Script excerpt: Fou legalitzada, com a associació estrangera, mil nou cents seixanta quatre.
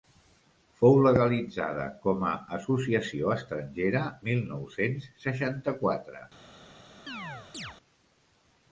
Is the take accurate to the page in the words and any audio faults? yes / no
no